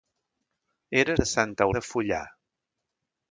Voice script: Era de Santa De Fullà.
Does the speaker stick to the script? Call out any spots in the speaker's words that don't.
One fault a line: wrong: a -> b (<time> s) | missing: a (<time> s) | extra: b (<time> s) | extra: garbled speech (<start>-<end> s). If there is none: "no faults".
no faults